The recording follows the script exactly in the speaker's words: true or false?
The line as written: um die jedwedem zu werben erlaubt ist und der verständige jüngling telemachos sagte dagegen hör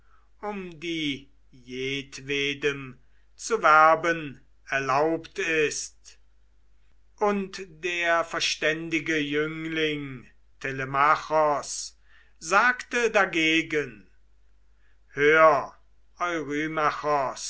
true